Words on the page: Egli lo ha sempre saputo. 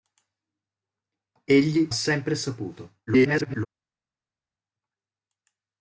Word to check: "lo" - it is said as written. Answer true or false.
false